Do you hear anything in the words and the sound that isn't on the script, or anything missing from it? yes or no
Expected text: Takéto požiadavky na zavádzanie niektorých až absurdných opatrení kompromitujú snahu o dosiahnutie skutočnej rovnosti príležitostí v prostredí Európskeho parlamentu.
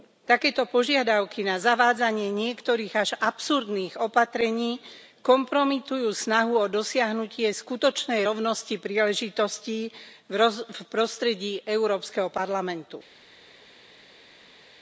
no